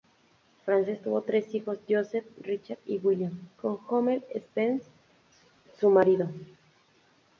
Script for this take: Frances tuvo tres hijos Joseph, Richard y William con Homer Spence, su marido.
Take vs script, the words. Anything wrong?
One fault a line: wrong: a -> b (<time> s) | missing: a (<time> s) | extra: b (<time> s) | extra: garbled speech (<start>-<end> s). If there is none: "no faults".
no faults